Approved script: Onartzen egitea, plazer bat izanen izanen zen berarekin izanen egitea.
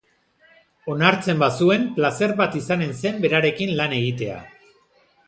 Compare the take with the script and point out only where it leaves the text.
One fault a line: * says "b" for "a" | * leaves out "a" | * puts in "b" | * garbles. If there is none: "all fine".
* says "bazuen" for "egitea"
* leaves out "izanen"
* says "lan" for "izanen"